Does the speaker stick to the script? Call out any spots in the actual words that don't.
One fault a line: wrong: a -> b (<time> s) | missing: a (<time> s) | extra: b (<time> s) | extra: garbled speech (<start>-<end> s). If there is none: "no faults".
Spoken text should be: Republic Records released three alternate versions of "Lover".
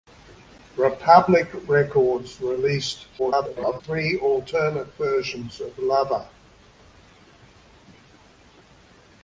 extra: garbled speech (3.2-3.8 s)